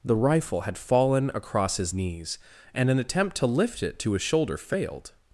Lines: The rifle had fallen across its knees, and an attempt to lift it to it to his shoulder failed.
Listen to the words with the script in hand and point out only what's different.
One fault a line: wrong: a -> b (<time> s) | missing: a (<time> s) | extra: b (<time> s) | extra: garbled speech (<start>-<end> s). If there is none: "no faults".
wrong: its -> his (1.8 s)
missing: it to (4.1 s)